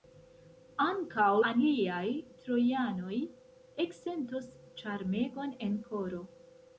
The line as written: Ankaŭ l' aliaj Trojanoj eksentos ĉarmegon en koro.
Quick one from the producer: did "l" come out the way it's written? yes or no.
no